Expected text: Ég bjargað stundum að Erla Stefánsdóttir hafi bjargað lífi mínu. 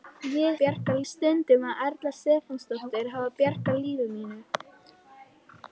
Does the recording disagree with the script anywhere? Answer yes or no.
no